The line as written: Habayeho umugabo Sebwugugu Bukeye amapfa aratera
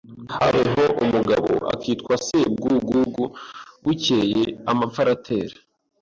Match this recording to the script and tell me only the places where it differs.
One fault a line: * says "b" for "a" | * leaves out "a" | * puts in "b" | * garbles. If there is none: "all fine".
* puts in "akitwa"